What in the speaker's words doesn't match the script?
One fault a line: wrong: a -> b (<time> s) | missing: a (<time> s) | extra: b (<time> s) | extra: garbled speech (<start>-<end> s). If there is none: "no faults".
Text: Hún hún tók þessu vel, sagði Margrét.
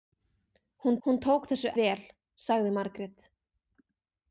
no faults